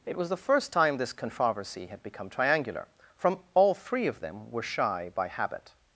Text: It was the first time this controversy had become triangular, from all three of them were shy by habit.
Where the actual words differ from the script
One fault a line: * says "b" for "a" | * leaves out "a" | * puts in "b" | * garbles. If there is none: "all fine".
all fine